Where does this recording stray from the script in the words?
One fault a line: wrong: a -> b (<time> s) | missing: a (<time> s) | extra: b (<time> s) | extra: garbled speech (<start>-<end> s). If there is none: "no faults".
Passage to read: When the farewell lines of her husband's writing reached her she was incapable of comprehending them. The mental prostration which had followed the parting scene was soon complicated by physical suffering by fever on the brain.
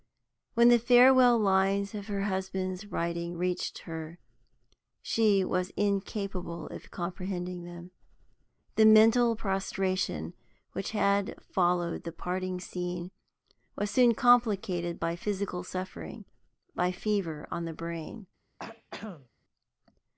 no faults